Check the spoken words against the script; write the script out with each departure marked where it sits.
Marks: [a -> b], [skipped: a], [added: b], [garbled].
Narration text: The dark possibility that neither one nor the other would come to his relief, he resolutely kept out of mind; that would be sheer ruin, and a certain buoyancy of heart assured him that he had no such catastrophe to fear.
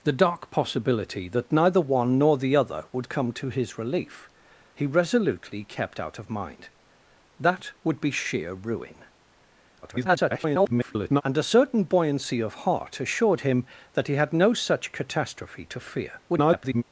The dark possibility that neither one nor the other would come to his relief, he resolutely kept out of mind; that would be sheer ruin, [garbled] and a certain buoyancy of heart assured him that he had no such catastrophe to fear. [garbled]